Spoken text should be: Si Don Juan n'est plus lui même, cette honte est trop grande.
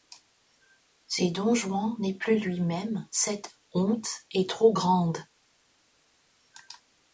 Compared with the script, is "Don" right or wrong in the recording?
right